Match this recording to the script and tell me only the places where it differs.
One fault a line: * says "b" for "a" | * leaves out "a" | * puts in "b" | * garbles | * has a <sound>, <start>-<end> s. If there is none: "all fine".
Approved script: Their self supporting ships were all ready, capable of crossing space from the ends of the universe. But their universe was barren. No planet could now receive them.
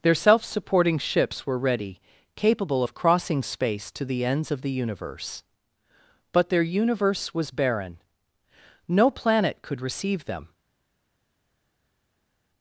* leaves out "all"
* says "to" for "from"
* leaves out "now"